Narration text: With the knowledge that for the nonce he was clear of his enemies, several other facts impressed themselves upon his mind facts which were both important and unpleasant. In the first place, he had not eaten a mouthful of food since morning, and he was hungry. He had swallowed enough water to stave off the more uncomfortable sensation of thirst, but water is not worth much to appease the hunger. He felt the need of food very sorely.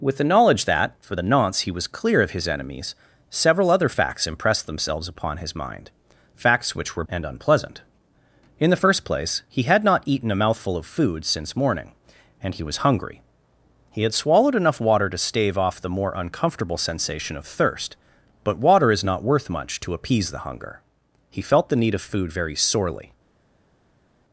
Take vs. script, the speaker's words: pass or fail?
fail